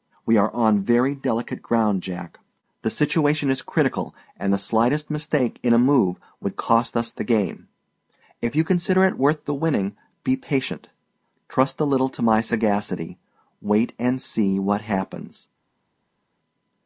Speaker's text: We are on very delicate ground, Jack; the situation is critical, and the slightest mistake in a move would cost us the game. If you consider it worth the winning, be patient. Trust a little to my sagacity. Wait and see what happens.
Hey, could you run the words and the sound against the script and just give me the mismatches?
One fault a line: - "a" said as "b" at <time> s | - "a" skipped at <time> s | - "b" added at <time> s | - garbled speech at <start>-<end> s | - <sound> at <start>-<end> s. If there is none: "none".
none